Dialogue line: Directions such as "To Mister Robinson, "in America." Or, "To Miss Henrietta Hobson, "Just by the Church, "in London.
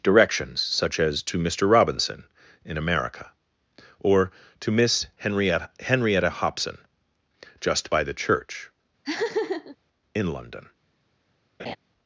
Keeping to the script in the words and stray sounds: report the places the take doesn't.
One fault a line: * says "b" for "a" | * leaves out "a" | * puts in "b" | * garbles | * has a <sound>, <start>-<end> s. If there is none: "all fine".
* puts in "Henrietta"
* has a laugh, 9.0-9.8 s
* has a laugh, 11.6-11.8 s